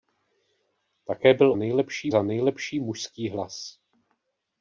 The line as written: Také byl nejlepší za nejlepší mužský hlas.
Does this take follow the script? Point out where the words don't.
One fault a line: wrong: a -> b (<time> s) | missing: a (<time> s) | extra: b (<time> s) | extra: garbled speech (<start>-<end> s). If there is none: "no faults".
no faults